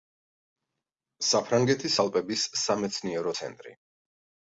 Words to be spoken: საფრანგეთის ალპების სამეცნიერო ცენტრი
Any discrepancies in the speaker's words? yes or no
no